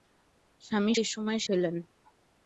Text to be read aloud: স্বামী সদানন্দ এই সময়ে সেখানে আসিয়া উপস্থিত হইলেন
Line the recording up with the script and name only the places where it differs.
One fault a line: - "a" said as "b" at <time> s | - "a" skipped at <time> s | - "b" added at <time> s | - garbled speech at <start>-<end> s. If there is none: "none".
- "সদানন্দ" skipped at 0.9 s
- "সেখানে আসিয়া উপস্থিত" skipped at 1.4 s